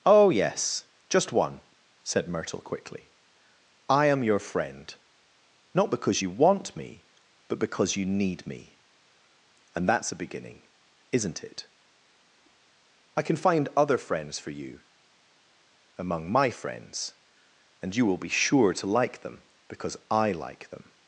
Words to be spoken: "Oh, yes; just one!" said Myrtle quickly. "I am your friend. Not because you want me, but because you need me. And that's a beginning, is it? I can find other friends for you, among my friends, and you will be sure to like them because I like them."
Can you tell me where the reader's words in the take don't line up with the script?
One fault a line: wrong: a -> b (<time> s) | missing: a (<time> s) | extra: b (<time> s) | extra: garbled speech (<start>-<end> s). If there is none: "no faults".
wrong: is -> isn't (11.1 s)